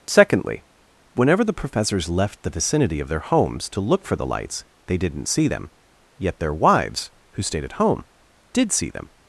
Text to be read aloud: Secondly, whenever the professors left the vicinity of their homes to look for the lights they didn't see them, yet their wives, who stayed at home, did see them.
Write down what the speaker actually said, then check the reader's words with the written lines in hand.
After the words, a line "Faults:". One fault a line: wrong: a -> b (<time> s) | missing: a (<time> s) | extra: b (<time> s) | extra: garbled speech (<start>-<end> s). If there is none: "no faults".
Secondly, whenever the professors left the vicinity of their homes to look for the lights they didn't see them, yet their wives, who stayed at home, did see them.
Faults:
no faults